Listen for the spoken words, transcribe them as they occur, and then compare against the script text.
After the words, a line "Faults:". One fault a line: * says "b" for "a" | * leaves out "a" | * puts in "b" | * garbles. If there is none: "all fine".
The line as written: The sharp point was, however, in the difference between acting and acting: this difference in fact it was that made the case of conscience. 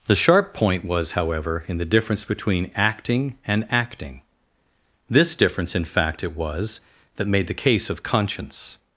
The sharp point was, however, in the difference between acting and acting: this difference in fact it was that made the case of conscience.
Faults:
all fine